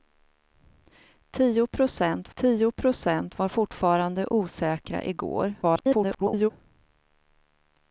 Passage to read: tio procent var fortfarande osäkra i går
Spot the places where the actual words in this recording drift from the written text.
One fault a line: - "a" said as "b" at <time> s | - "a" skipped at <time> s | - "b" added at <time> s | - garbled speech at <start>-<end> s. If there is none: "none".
- "tio procent" added at 2.3 s
- garbled speech at 5.6-6.5 s